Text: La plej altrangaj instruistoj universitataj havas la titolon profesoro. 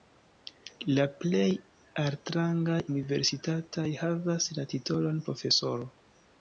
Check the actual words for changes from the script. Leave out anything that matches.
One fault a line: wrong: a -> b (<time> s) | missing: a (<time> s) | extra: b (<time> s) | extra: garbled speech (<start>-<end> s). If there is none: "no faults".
missing: instruistoj (2.8 s)